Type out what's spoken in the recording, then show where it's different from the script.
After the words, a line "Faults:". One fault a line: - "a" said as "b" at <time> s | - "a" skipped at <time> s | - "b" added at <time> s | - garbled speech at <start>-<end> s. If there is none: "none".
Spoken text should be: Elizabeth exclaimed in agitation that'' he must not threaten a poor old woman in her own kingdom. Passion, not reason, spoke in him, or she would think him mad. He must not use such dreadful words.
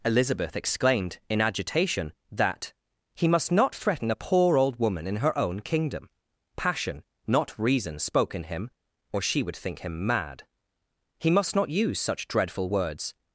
Elizabeth exclaimed in agitation that'' he must not threaten a poor old woman in her own kingdom. Passion, not reason, spoke in him, or she would think him mad. He must not use such dreadful words.
Faults:
none